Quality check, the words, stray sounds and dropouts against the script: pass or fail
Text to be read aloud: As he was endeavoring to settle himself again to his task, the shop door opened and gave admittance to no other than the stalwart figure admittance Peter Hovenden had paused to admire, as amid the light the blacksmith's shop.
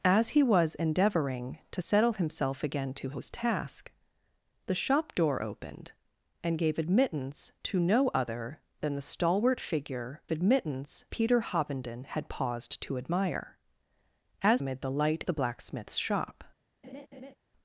fail